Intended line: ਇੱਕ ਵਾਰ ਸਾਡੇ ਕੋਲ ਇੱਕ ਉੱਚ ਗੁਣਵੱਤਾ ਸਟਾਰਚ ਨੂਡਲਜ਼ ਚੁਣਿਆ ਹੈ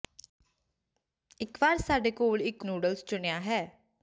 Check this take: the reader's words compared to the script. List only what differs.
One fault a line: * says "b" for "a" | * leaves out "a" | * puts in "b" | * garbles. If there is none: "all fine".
* leaves out "ਉੱਚ ਗੁਣਵੱਤਾ ਸਟਾਰਚ"